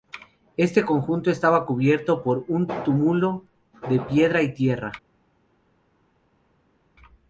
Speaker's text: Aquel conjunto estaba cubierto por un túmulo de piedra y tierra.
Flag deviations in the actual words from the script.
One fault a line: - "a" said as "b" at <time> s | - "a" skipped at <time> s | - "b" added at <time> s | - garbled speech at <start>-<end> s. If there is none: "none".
- "Aquel" said as "Este" at 0.6 s